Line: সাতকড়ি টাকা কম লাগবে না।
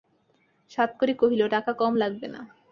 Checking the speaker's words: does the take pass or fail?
fail